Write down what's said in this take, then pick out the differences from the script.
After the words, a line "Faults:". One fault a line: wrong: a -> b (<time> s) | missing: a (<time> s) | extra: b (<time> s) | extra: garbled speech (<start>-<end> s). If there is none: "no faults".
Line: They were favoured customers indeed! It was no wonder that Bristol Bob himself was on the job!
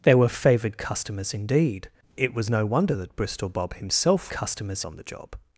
They were favoured customers indeed! It was no wonder that Bristol Bob himself customers on the job!
Faults:
wrong: was -> customers (4.3 s)